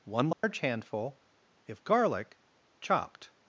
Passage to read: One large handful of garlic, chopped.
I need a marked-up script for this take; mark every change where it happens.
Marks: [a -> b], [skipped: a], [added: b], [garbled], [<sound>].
One large [dropout] handful [of -> if] garlic, chopped.